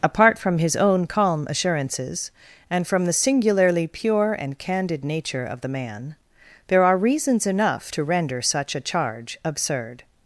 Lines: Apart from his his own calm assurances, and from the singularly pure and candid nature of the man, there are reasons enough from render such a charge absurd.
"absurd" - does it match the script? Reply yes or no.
yes